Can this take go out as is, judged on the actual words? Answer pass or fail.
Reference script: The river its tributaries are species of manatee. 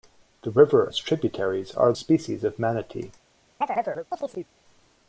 pass